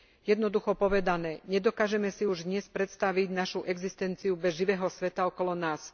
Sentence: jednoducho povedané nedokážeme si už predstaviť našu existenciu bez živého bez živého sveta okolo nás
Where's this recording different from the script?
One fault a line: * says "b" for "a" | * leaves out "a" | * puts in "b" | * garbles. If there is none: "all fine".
* puts in "dnes"
* leaves out "bez živého"